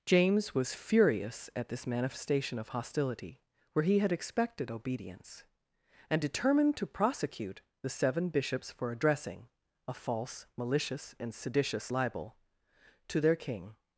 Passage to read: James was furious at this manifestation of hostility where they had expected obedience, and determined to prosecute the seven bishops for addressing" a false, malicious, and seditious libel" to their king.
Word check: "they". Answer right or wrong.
wrong